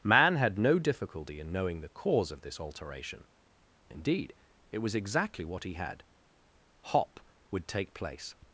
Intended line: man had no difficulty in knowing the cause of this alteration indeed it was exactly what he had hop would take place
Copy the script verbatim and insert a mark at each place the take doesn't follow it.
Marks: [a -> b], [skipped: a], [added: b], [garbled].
man had no difficulty in knowing the cause of this alteration indeed it was exactly what he had hop would take place